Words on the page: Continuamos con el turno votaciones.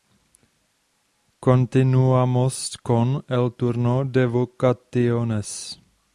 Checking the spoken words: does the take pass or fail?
fail